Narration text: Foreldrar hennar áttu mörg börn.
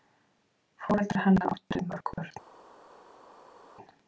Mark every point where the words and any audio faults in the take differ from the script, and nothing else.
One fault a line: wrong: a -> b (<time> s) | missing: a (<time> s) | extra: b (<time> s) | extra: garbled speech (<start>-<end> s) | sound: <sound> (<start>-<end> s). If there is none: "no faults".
no faults